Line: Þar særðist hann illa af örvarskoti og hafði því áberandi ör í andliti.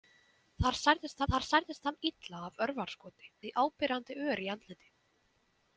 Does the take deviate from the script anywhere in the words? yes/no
yes